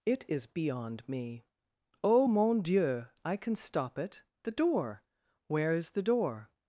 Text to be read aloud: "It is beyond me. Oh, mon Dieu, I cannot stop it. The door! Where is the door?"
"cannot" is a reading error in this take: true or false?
true